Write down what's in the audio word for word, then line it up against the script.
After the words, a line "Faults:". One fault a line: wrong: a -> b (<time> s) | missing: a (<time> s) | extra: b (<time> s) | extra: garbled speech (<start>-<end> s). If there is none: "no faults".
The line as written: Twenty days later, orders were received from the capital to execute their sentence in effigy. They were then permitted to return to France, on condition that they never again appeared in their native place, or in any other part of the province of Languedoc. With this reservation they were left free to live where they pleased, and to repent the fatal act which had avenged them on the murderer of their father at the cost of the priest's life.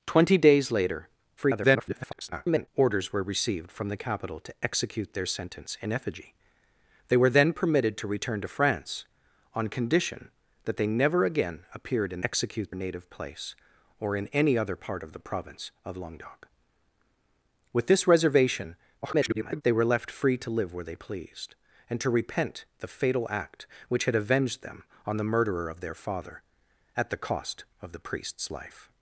Twenty days later, [garbled] orders were received from the capital to execute their sentence in effigy. They were then permitted to return to France, on condition that they never again appeared in execute native place, or in any other part of the province of Languedoc. With this reservation [garbled] they were left free to live where they pleased, and to repent the fatal act which had avenged them on the murderer of their father at the cost of the priest's life.
Faults:
extra: garbled speech (1.4-2.7 s)
wrong: their -> execute (12.2 s)
extra: garbled speech (19.0-19.6 s)